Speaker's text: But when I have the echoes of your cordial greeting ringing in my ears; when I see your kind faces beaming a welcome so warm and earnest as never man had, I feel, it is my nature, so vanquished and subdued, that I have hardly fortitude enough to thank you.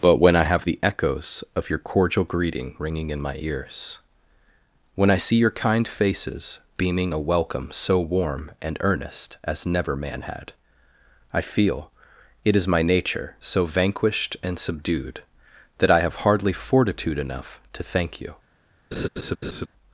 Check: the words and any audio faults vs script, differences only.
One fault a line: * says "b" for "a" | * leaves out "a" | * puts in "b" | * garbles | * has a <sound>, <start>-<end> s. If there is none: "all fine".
* has a laugh, 18.9-19.7 s